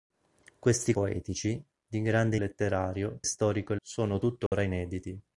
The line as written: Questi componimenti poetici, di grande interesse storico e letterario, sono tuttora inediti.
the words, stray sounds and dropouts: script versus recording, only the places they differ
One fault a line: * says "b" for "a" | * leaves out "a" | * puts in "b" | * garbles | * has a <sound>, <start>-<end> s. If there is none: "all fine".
* leaves out "componimenti"
* says "letterario" for "interesse"
* leaves out "letterario"
* has a dropout, 4.5-4.5 s